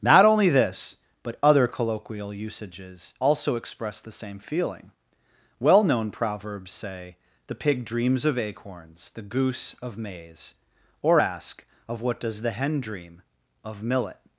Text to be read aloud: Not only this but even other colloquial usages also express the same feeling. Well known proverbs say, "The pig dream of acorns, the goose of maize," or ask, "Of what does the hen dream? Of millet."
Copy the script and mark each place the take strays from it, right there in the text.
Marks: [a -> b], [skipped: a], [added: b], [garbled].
Not only this but [skipped: even] other colloquial usages also express the same feeling. Well known proverbs say, "The pig [dream -> dreams] of acorns, the goose of maize," or ask, "Of what does the hen dream? Of millet."